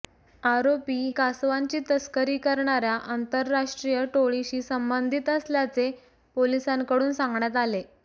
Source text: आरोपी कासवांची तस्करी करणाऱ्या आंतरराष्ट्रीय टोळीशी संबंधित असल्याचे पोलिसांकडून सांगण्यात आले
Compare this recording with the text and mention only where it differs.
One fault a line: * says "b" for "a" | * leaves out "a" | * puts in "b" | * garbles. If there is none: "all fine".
all fine